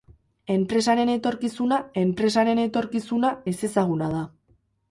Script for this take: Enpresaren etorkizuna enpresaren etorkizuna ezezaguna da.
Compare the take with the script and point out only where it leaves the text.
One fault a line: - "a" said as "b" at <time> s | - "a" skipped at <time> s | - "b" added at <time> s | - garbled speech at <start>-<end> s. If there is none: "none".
none